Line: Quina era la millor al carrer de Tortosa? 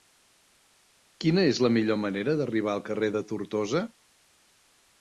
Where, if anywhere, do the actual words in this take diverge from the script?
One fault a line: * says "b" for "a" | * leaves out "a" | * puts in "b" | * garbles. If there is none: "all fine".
* says "és" for "era"
* puts in "manera d'arribar"